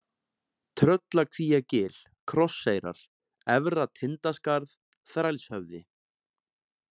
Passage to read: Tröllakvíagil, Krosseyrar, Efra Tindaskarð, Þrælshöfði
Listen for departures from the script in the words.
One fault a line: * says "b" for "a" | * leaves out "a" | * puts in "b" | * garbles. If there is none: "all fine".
all fine